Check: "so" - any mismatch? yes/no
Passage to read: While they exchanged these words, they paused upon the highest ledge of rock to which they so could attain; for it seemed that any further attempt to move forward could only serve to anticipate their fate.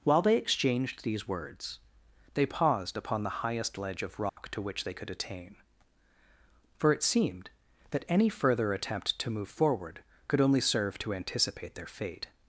yes